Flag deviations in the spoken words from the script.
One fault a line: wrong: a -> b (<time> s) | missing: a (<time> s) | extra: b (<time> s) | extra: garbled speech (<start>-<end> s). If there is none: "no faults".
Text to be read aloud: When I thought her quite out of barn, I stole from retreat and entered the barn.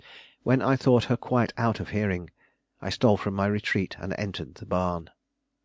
wrong: barn -> hearing (1.9 s)
extra: my (3.3 s)